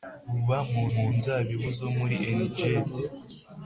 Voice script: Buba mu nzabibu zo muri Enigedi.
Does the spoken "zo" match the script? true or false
true